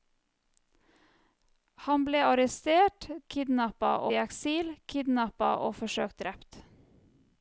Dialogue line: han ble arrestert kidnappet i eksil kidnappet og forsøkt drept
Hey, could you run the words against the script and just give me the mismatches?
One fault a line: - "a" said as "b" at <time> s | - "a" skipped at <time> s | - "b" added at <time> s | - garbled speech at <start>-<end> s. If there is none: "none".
none